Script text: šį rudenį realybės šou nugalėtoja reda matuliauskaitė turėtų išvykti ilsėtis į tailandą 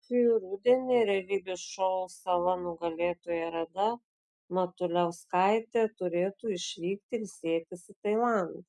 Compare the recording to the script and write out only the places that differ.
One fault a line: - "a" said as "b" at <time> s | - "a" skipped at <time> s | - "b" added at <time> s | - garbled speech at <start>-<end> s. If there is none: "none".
- "sala" added at 2.1 s